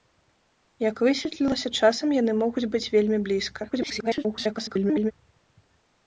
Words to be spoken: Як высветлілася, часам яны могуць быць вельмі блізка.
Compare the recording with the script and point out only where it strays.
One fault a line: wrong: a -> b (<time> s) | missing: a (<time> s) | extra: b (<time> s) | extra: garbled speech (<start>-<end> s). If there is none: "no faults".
extra: garbled speech (3.7-5.1 s)